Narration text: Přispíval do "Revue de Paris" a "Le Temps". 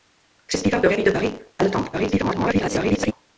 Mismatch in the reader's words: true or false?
true